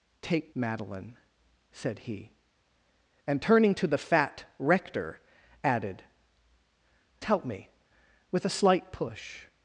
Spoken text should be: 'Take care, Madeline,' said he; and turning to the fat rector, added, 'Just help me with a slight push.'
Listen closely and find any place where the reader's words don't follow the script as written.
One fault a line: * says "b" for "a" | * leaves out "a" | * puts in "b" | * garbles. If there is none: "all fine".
* leaves out "care"
* leaves out "Just"